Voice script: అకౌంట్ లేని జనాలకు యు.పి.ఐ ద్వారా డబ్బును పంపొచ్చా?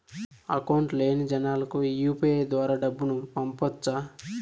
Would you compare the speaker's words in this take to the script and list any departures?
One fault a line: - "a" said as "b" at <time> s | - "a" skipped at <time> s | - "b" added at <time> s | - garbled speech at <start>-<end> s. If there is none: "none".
none